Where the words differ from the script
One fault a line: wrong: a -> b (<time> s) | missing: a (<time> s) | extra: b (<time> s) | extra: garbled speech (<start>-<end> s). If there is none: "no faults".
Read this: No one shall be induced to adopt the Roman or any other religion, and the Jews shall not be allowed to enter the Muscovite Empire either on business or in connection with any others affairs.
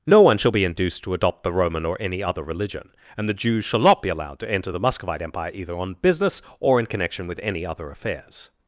wrong: others -> other (7.6 s)